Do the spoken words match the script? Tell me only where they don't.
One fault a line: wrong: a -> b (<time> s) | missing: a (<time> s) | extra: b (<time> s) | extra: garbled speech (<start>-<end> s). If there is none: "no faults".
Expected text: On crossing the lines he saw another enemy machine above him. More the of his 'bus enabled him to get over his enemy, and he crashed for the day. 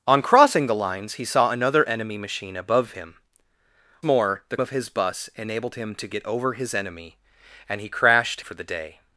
no faults